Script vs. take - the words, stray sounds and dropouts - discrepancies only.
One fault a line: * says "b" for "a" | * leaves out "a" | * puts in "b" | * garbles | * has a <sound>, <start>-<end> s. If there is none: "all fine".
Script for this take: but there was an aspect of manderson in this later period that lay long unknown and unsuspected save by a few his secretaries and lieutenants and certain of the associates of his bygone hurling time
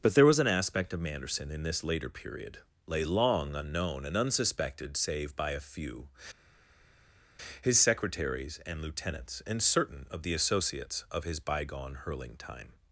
* leaves out "that"